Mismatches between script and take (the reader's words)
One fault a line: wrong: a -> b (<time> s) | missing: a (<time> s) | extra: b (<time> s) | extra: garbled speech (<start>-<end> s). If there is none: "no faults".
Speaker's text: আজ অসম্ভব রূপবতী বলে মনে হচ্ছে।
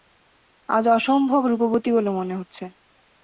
no faults